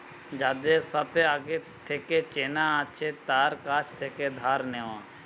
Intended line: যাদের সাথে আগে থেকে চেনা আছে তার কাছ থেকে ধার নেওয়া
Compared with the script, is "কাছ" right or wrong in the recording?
right